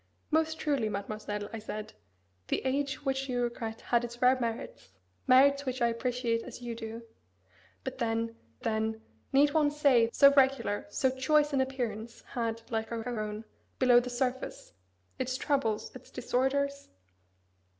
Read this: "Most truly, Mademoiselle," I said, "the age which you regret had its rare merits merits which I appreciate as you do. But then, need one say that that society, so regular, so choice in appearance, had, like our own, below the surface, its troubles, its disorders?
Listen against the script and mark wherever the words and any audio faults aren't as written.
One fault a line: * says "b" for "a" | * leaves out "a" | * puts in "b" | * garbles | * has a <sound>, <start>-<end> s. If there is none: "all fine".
* puts in "then"
* leaves out "that that society"
* puts in "our"